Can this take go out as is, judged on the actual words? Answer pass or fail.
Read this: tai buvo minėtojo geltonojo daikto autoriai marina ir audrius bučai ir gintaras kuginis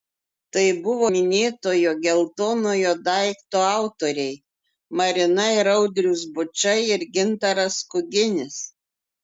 pass